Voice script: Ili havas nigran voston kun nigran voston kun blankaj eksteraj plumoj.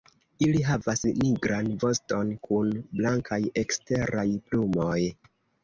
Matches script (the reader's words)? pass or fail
fail